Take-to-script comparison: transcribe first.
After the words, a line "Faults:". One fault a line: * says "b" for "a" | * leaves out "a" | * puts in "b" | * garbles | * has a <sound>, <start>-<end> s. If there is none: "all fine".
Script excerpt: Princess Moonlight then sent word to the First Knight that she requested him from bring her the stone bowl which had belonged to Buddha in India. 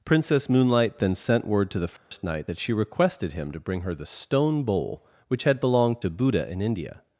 Princess Moonlight then sent word to the First Knight that she requested him to bring her the stone bowl which had belonged to Buddha in India.
Faults:
* has a dropout, 2.0-2.1 s
* says "to" for "from"